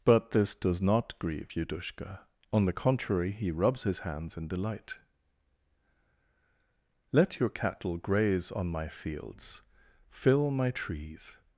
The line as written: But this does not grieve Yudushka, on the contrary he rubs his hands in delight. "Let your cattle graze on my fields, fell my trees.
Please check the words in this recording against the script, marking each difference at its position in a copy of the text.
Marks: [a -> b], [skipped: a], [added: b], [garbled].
But this does not grieve Yudushka, on the contrary he rubs his hands in delight. "Let your cattle graze on my fields, [fell -> fill] my trees.